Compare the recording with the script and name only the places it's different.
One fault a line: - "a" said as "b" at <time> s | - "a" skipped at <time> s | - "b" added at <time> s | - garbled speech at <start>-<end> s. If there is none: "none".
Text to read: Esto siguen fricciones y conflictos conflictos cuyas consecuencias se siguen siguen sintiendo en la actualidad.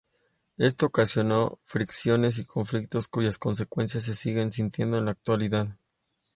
- "siguen" said as "ocasionó" at 0.9 s
- "conflictos" skipped at 3.1 s
- "siguen" skipped at 4.5 s